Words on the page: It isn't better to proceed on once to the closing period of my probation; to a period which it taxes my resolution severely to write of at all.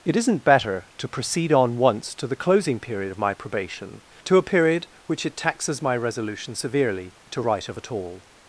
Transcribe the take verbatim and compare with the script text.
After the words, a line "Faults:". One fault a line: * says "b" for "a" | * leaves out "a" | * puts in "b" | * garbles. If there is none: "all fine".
It isn't better to proceed on once to the closing period of my probation; to a period which it taxes my resolution severely to write of at all.
Faults:
all fine